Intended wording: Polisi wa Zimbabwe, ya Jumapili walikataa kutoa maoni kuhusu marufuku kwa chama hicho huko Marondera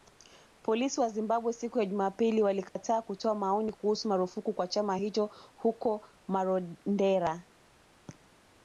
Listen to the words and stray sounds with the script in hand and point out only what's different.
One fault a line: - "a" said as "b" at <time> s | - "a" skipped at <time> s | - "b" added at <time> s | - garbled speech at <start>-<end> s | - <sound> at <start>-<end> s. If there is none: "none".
- "siku" added at 1.5 s
- dropout at 2.7-2.8 s